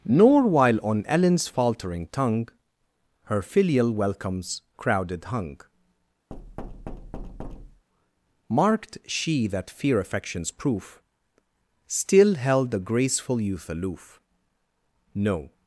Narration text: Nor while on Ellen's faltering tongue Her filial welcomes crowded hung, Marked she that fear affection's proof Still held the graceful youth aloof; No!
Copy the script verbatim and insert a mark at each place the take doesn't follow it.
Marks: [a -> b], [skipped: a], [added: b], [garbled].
Nor while on Ellen's faltering tongue Her filial welcomes crowded hung, Marked she that fear affection's proof Still held the graceful youth aloof; No!